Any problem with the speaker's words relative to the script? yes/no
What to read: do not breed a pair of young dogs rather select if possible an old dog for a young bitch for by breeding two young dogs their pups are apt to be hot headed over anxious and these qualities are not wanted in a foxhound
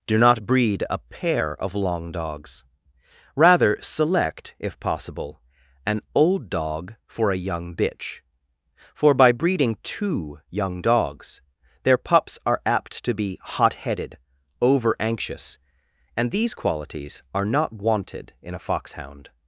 yes